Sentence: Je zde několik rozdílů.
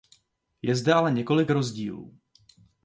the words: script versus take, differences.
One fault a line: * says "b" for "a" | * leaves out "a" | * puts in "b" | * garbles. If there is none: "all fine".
* puts in "ale"